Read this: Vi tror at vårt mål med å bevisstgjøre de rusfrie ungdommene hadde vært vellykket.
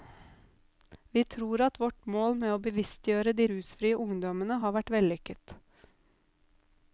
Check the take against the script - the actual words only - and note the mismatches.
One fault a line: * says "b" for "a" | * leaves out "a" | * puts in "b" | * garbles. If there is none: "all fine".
* says "har" for "hadde"